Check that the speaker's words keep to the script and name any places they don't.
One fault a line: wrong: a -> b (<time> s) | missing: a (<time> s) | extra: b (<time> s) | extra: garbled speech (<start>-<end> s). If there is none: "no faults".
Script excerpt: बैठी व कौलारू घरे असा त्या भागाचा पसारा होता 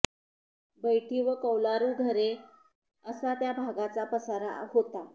no faults